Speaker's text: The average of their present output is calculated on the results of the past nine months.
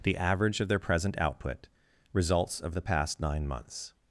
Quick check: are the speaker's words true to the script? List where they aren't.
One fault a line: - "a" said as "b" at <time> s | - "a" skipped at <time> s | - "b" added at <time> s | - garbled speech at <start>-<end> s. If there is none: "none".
- "is calculated on the" skipped at 1.7 s